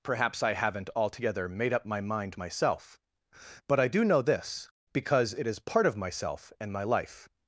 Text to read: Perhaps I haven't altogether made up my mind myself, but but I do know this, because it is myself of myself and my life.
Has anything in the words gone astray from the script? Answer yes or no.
yes